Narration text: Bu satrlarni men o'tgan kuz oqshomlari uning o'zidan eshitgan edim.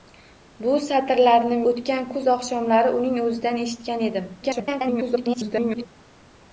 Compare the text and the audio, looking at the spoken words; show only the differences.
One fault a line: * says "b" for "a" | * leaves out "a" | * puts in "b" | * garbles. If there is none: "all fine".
* leaves out "men"
* garbles